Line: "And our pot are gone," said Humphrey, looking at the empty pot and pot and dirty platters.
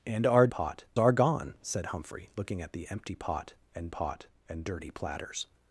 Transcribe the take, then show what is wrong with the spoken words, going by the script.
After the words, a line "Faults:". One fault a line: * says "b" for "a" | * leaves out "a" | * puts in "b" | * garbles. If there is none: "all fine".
"And our pot are gone," said Humphrey, looking at the empty pot and pot and dirty platters.
Faults:
all fine